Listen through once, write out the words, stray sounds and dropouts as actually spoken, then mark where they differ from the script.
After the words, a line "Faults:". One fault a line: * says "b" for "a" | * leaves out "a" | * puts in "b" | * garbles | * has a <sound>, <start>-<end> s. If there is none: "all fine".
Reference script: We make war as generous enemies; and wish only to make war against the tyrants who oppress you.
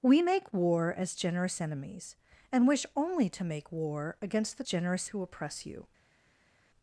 We make war as generous enemies; and wish only to make war against the generous who oppress you.
Faults:
* says "generous" for "tyrants"